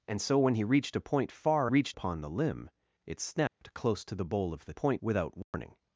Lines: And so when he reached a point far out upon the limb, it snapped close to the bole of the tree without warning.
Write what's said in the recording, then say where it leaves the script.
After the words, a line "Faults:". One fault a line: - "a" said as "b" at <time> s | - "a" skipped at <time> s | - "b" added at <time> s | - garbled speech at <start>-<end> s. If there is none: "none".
And so when he reached a point far reached upon the limb, it snapped close to the bole of the point without warning.
Faults:
- "out" said as "reached" at 1.6 s
- "tree" said as "point" at 4.7 s